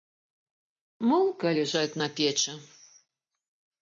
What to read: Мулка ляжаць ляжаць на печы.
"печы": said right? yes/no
yes